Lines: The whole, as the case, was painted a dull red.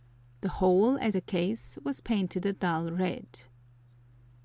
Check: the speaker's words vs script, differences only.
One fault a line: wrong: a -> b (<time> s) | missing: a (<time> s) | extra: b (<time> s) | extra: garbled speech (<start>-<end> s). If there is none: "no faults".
no faults